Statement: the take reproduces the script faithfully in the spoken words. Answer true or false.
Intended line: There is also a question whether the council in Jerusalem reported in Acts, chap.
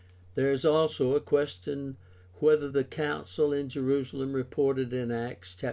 true